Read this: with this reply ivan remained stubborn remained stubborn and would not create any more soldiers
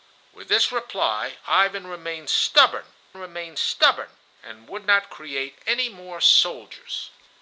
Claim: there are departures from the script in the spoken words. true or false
false